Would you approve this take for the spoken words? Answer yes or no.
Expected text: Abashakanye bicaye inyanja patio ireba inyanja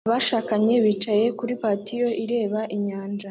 no